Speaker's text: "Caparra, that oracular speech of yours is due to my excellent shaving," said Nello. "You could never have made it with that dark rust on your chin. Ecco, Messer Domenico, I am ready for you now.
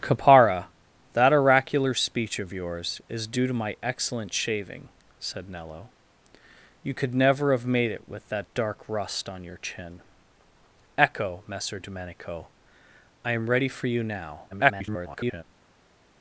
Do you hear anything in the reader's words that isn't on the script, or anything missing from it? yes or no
yes